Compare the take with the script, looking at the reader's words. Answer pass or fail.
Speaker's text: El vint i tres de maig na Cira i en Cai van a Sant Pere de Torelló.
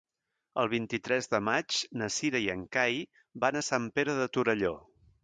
pass